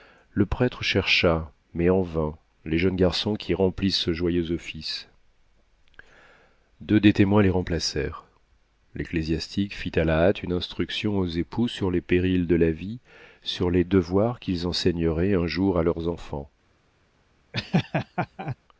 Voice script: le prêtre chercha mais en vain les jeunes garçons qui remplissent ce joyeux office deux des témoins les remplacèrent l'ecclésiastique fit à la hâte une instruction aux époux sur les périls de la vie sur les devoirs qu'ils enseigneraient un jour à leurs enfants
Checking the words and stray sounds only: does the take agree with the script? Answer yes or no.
no